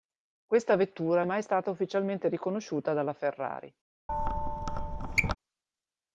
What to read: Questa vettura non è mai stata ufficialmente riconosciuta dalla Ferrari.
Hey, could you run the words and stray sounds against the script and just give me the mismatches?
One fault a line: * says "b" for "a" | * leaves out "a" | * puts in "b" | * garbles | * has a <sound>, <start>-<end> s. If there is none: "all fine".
* leaves out "non"
* has a squeak, 4.1-5.4 s